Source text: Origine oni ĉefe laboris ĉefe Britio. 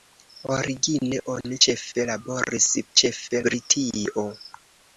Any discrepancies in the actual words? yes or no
no